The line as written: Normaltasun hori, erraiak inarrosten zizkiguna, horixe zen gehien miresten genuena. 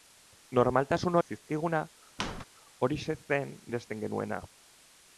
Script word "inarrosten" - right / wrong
wrong